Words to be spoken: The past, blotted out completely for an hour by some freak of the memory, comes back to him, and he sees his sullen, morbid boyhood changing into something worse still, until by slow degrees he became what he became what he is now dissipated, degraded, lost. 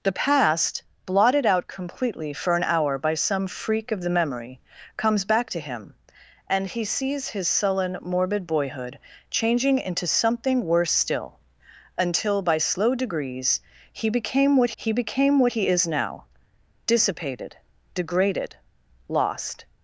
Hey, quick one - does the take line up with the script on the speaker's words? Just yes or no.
yes